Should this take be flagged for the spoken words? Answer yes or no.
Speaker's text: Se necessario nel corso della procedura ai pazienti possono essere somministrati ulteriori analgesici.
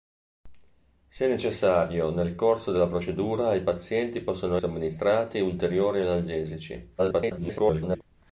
yes